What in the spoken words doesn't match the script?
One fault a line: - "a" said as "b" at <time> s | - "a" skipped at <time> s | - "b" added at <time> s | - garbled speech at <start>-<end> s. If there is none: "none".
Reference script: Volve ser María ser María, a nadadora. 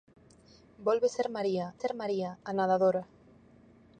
none